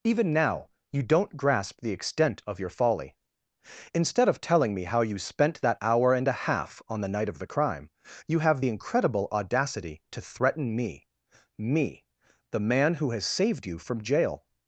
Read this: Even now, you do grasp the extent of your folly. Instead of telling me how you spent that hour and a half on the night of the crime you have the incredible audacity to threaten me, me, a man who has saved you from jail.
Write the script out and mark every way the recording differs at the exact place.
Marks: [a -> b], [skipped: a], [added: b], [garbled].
Even now, you [do -> don't] grasp the extent of your folly. Instead of telling me how you spent that hour and a half on the night of the crime you have the incredible audacity to threaten me, me, [a -> the] man who has saved you from jail.